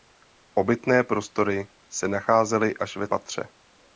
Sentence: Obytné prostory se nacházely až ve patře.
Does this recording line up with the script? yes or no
yes